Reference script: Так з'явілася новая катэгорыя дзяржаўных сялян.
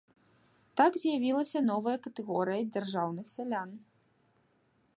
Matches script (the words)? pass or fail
pass